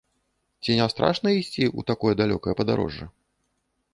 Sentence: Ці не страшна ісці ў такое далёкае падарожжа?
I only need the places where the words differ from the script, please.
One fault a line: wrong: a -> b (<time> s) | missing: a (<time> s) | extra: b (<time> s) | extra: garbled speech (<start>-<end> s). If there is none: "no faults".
no faults